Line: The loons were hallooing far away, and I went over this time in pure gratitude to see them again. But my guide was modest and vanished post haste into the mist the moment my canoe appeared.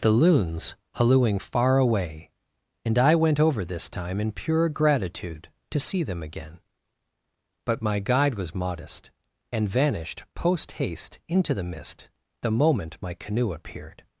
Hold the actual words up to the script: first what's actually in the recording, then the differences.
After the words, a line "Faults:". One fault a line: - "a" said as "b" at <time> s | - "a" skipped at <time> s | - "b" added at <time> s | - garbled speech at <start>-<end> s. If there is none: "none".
The loons hallooing far away, and I went over this time in pure gratitude to see them again. But my guide was modest and vanished post haste into the mist the moment my canoe appeared.
Faults:
- "were" skipped at 0.8 s